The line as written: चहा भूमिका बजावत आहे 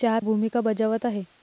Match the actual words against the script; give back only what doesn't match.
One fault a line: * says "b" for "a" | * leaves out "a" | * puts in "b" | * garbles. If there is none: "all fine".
all fine